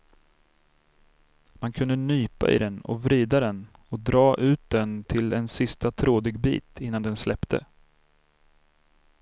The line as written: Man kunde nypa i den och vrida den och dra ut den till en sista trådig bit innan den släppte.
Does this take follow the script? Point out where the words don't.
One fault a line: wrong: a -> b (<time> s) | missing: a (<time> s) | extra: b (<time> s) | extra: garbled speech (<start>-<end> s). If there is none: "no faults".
no faults